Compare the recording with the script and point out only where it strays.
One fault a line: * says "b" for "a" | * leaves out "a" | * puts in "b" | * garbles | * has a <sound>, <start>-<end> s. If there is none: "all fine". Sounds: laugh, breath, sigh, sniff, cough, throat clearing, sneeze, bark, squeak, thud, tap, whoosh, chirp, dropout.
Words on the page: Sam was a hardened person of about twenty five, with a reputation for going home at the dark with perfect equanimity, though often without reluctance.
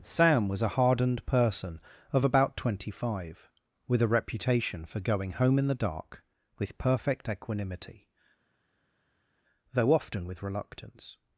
* says "in" for "at"
* says "with" for "without"